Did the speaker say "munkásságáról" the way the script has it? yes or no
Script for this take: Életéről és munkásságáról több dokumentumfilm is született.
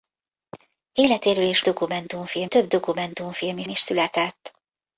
no